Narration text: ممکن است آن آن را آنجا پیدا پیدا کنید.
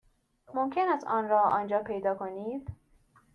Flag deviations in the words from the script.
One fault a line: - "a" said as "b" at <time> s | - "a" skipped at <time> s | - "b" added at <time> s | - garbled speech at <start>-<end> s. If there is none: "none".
- "آن" skipped at 1.3 s
- "پیدا" skipped at 2.1 s